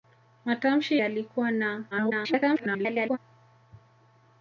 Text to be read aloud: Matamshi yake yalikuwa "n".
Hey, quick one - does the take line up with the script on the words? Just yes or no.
no